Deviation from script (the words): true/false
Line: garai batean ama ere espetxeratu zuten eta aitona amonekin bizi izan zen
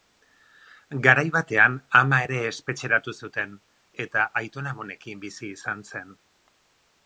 false